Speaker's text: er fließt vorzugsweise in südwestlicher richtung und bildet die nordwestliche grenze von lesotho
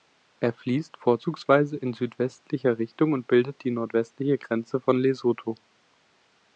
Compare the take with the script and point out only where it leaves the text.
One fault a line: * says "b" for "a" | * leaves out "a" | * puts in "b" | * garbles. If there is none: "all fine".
all fine